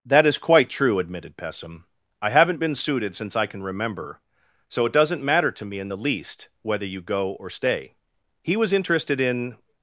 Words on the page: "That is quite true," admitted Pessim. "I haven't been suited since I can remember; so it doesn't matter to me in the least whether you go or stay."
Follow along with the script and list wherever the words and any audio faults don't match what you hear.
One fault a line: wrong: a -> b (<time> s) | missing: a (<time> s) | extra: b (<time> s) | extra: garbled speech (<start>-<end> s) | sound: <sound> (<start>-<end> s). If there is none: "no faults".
extra: He was interested in (8.4 s)